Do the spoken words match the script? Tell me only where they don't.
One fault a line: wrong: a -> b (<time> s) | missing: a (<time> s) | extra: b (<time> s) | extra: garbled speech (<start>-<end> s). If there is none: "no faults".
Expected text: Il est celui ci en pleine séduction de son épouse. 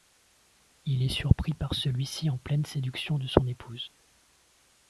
extra: surpris par (1.1 s)